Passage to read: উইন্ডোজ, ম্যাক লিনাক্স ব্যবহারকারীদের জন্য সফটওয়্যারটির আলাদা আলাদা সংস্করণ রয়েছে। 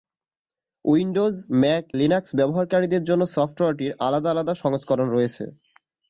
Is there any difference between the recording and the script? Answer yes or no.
no